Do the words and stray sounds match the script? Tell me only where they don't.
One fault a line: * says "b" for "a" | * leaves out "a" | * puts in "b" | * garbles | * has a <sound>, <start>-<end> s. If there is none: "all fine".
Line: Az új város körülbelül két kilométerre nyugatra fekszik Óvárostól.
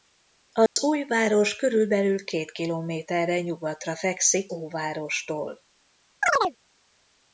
* has a dropout, 0.7-0.8 s
* has a chirp, 6.2-6.6 s